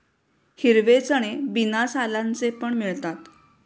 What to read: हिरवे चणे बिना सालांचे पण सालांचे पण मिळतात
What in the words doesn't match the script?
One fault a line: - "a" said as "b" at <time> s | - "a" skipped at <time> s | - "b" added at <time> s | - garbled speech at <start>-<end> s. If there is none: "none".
- "सालांचे पण" skipped at 2.7 s